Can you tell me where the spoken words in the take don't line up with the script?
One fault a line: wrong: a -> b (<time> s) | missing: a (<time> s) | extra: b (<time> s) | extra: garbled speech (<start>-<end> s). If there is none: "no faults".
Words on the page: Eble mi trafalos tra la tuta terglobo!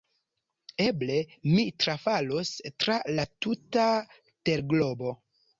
no faults